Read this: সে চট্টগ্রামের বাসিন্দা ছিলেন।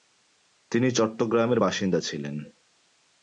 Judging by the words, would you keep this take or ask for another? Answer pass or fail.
fail